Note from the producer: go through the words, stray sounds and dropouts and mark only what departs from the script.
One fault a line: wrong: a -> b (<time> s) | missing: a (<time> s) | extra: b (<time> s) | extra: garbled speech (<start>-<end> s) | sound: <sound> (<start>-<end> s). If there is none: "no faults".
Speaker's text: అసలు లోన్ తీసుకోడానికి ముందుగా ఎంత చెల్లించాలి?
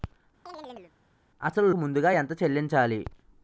sound: chirp (0.5-0.9 s)
missing: లోన్ తీసుకోడానికి (1.7 s)